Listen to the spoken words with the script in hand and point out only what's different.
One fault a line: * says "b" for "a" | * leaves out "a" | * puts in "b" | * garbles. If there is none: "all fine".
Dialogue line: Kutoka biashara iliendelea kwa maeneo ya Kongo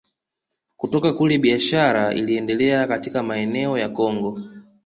* puts in "kule"
* says "katika" for "kwa"